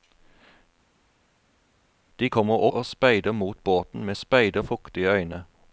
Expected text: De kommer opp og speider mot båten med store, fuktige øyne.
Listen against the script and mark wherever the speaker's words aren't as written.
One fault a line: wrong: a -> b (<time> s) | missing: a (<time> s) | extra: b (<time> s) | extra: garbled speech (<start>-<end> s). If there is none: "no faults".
missing: opp (2.6 s)
wrong: store -> speider (4.1 s)